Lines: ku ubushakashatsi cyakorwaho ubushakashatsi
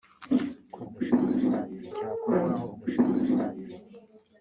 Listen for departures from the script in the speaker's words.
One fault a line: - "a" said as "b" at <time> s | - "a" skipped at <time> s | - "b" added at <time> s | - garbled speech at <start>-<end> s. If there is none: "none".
none